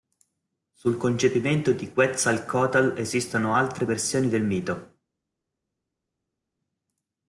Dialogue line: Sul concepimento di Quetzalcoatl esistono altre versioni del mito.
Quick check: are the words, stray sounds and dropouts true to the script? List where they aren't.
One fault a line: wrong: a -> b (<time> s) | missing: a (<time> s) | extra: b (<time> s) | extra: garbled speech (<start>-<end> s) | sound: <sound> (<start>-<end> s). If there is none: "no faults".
no faults